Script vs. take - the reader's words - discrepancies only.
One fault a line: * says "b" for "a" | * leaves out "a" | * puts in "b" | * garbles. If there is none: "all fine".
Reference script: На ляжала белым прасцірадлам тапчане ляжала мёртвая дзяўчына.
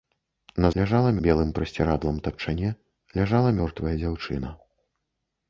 all fine